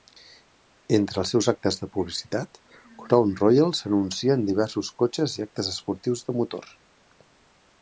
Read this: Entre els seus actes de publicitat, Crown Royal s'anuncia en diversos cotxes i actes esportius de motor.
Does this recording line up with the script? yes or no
yes